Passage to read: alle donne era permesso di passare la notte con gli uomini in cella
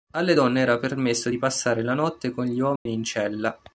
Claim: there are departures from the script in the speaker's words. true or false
false